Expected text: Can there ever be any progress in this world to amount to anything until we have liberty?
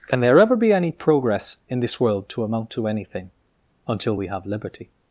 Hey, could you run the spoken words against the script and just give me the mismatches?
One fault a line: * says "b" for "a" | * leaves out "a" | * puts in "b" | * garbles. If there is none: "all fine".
all fine